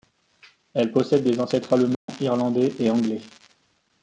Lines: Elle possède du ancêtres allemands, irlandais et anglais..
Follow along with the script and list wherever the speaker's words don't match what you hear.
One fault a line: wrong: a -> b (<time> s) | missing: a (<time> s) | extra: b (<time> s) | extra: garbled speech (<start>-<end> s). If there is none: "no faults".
wrong: du -> des (1.2 s)